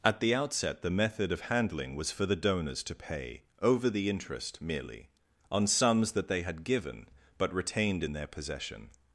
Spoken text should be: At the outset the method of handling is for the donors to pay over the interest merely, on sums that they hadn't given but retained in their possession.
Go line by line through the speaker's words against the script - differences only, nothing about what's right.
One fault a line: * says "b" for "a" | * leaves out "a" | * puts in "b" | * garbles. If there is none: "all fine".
* says "was" for "is"
* says "had" for "hadn't"